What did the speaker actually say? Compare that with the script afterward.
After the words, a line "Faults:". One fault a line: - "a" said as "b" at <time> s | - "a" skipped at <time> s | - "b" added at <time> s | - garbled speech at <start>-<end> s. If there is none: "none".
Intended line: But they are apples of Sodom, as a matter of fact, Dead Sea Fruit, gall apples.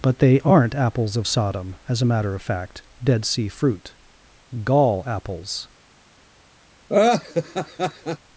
But they aren't apples of Sodom, as a matter of fact, Dead Sea Fruit, gall apples.
Faults:
- "are" said as "aren't" at 0.4 s